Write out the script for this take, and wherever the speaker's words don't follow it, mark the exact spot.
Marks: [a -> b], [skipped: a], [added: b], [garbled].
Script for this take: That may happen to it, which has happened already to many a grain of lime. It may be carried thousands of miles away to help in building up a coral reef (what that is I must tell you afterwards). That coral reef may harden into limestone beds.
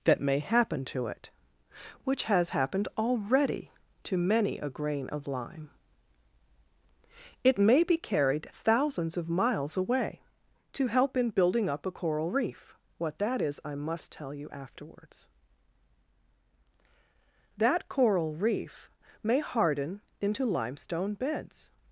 That may happen to it, which has happened already to many a grain of lime. It may be carried thousands of miles away to help in building up a coral reef (what that is I must tell you afterwards). That coral reef may harden into limestone beds.